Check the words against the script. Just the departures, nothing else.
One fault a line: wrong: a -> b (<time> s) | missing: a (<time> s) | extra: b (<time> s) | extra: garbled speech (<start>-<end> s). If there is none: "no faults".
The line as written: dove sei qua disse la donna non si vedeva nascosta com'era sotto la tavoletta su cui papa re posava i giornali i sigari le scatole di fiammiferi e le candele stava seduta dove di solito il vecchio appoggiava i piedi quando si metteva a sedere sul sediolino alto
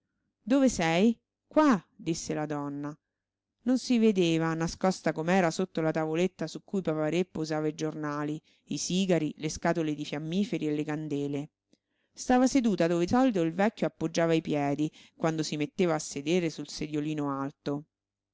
missing: di (13.1 s)